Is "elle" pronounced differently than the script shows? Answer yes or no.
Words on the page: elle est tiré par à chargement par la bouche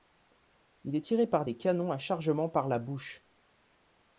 yes